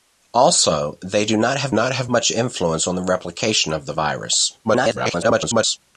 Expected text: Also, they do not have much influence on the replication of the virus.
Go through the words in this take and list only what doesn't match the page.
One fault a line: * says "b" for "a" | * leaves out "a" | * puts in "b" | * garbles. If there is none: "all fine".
* puts in "not have"
* garbles